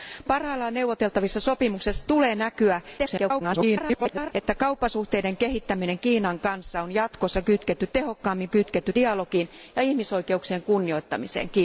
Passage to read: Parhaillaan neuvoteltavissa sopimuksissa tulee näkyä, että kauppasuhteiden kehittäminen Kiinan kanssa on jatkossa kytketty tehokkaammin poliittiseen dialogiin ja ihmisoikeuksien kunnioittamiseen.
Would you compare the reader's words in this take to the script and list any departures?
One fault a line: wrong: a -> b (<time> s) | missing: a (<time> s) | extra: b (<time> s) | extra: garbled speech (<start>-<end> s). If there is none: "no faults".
extra: garbled speech (3.0-4.3 s)
wrong: poliittiseen -> kytketty (8.5 s)